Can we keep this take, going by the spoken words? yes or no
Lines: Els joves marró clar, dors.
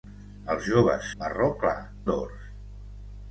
yes